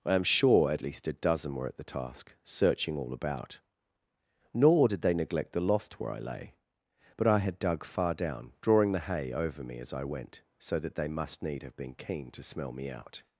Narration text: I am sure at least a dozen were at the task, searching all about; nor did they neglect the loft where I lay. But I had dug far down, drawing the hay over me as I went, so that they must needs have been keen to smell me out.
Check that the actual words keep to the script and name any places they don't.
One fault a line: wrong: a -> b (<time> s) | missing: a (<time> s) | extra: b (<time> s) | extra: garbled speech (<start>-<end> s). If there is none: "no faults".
wrong: needs -> need (11.4 s)